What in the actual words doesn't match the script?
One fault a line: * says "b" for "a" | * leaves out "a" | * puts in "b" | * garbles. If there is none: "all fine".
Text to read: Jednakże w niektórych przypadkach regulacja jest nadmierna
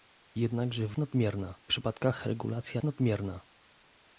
* says "nadmierna" for "niektórych"
* leaves out "jest"